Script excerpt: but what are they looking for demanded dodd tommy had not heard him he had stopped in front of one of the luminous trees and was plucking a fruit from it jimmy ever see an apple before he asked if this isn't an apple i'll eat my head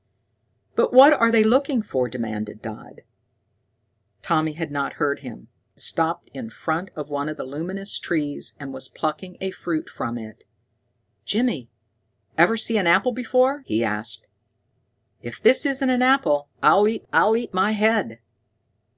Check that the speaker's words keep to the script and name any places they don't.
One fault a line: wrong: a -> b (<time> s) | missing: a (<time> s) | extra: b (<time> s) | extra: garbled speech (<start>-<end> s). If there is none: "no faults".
missing: he had (5.5 s)
extra: i'll eat (17.1 s)